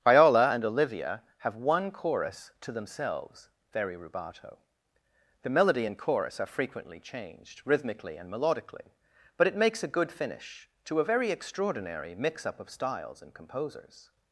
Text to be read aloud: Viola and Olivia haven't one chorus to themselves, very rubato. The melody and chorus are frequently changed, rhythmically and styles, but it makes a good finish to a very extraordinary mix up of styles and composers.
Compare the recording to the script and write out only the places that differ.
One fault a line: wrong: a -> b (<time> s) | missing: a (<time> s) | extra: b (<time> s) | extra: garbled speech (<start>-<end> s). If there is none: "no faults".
wrong: haven't -> have (1.4 s)
wrong: styles -> melodically (8.3 s)